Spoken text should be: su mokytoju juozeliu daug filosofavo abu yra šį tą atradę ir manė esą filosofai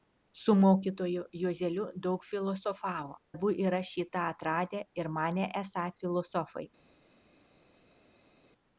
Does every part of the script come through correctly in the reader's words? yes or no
yes